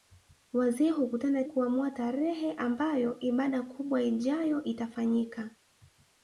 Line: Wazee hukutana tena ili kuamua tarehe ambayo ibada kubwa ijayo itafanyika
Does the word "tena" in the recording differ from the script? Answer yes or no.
yes